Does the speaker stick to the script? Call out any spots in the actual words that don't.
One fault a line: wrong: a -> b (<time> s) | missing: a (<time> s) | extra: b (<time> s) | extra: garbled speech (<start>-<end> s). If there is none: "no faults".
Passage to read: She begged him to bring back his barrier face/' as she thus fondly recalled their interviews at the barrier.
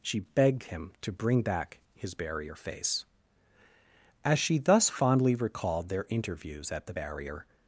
no faults